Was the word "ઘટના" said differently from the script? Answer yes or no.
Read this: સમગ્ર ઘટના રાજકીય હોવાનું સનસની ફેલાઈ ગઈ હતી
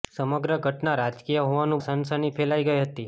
no